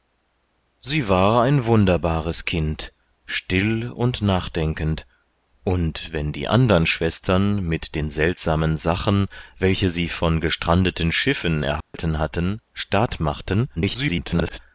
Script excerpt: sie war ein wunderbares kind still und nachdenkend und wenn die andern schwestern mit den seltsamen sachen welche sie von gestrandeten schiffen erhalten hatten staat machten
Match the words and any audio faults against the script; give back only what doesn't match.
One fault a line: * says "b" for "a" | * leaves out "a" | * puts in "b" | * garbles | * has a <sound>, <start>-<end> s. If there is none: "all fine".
* has a dropout, 11.8-11.9 s
* garbles